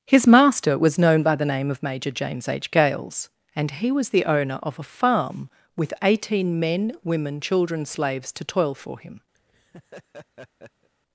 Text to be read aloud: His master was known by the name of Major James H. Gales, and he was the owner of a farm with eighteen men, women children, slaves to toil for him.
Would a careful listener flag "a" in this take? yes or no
no